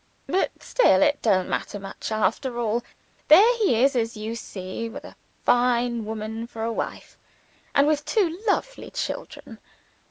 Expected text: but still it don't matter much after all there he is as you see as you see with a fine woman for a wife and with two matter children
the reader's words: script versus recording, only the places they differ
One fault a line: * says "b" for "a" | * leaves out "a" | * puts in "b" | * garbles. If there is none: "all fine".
* leaves out "as you see"
* says "lovely" for "matter"